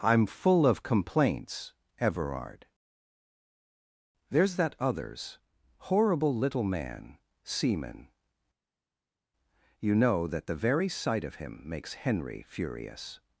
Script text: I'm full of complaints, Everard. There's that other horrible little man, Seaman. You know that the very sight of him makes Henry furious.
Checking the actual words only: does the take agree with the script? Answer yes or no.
no